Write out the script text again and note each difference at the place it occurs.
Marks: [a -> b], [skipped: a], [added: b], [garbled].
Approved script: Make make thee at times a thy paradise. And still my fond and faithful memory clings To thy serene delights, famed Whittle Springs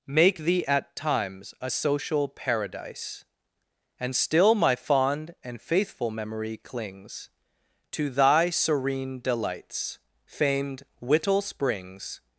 Make [skipped: make] thee at times a [thy -> social] paradise. And still my fond and faithful memory clings To thy serene delights, famed Whittle Springs